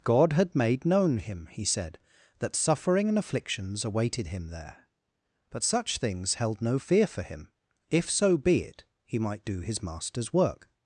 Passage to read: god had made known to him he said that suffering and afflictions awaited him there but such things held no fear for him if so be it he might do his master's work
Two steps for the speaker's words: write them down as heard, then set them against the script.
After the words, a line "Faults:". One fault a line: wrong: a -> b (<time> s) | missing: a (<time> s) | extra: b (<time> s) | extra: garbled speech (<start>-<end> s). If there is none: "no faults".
god had made known him he said that suffering and afflictions awaited him there but such things held no fear for him if so be it he might do his master's work
Faults:
missing: to (1.2 s)